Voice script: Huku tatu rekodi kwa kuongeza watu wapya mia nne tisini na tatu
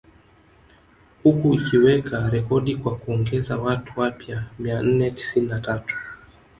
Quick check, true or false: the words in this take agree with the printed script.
false